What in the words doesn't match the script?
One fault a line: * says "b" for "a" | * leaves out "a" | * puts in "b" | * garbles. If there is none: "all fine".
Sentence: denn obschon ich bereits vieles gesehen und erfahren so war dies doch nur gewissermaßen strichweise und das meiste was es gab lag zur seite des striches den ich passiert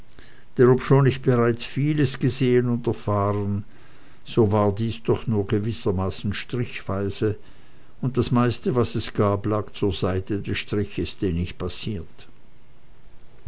all fine